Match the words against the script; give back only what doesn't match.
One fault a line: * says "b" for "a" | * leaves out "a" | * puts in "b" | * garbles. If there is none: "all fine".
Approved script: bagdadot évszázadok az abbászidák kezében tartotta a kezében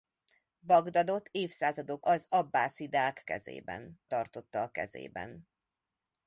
all fine